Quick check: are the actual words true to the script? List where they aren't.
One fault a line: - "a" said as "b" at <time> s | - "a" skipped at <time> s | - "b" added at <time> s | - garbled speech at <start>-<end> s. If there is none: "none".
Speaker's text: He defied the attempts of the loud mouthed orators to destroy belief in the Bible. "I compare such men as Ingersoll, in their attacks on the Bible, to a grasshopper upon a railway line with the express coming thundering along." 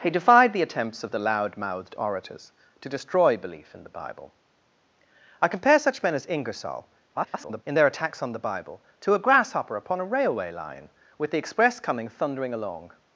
- garbled speech at 7.1-7.6 s